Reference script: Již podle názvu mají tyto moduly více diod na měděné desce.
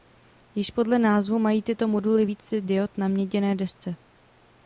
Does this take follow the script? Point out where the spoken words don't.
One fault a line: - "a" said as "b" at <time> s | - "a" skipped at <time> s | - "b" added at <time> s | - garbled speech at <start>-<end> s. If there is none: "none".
none